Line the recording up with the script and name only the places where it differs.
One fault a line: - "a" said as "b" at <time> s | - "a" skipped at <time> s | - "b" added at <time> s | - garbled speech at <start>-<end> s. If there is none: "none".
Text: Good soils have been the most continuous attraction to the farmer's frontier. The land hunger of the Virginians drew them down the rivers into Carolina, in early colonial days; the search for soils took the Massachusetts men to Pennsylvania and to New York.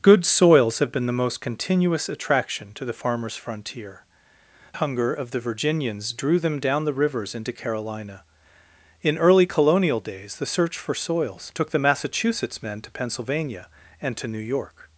- "The land" skipped at 4.0 s